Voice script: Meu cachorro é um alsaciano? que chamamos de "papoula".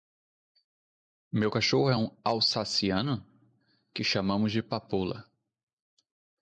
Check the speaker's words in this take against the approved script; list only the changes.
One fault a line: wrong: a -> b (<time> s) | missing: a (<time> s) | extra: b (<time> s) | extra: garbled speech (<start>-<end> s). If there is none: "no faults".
no faults